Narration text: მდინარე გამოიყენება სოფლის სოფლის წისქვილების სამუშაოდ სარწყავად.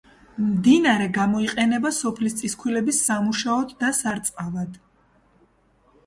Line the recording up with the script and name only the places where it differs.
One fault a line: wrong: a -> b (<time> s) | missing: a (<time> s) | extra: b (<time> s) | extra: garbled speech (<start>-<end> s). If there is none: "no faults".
missing: სოფლის (2.4 s)
extra: და (3.8 s)